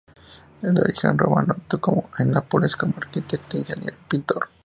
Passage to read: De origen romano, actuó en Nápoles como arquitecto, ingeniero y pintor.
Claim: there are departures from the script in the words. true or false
false